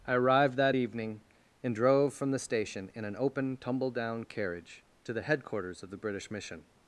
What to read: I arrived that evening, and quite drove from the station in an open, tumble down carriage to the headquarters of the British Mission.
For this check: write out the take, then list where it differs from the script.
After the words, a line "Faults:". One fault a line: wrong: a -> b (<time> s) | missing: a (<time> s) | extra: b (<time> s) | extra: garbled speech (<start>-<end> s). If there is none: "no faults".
I arrived that evening, and drove from the station in an open, tumble down carriage to the headquarters of the British Mission.
Faults:
missing: quite (1.7 s)